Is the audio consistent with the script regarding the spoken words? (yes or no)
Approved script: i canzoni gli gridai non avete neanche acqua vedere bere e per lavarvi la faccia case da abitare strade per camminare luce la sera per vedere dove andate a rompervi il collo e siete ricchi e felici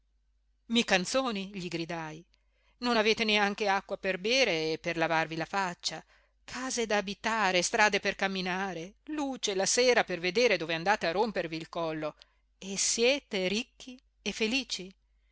no